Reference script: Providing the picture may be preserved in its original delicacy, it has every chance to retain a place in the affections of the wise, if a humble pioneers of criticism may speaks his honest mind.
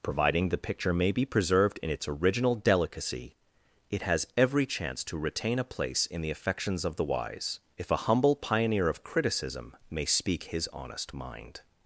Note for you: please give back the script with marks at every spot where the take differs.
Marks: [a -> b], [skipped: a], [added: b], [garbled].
Providing the picture may be preserved in its original delicacy, it has every chance to retain a place in the affections of the wise, if a humble [pioneers -> pioneer] of criticism may [speaks -> speak] his honest mind.